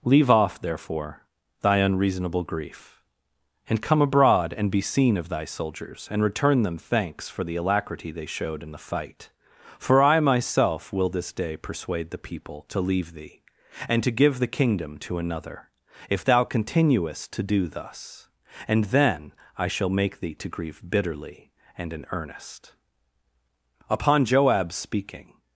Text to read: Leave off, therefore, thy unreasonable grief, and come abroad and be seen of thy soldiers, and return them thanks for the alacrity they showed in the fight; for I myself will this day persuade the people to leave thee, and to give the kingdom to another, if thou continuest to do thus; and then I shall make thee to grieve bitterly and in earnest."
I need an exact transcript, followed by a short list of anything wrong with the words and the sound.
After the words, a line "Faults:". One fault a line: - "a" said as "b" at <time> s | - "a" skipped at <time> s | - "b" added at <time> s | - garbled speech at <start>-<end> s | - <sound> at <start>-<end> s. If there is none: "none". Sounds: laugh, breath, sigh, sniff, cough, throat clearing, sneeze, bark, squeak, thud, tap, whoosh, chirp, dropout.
Leave off, therefore, thy unreasonable grief, and come abroad and be seen of thy soldiers, and return them thanks for the alacrity they showed in the fight; for I myself will this day persuade the people to leave thee, and to give the kingdom to another, if thou continuest to do thus; and then I shall make thee to grieve bitterly and in earnest." Upon Joab's speaking
Faults:
- "Upon Joab's speaking" added at 23.9 s